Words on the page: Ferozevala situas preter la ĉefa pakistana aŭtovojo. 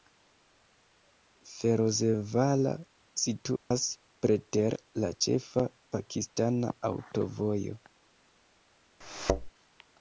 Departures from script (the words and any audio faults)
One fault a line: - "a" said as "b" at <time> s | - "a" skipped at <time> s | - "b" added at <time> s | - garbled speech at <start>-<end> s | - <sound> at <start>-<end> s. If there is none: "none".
- dropout at 3.6-3.7 s
- thud at 9.0-9.5 s